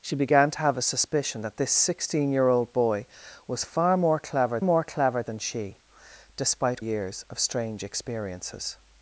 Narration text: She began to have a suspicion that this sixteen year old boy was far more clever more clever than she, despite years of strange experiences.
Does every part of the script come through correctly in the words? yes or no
yes